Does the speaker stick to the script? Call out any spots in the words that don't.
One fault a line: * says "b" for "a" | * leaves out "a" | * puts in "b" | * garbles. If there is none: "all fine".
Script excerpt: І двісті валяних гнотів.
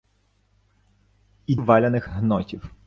* leaves out "двісті"